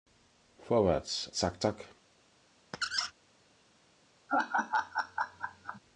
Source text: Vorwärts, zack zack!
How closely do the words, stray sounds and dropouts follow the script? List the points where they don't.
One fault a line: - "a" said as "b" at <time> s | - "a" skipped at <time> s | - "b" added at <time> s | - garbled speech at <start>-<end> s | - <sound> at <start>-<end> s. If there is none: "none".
- squeak at 2.7-3.1 s
- laugh at 4.3-5.8 s